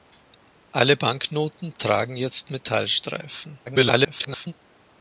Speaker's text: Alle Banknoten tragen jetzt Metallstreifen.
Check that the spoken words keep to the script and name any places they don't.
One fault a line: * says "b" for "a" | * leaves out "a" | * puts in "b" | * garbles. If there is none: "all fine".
* garbles